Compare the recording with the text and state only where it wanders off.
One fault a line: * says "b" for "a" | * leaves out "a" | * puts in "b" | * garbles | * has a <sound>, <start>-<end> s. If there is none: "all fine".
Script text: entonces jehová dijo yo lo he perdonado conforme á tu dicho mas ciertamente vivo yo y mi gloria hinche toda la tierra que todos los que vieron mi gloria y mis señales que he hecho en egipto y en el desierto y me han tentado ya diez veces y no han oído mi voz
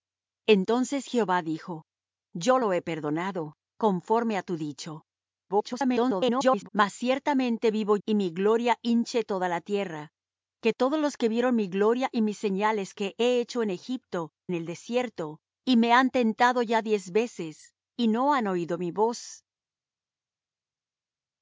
* garbles
* leaves out "yo"
* leaves out "y"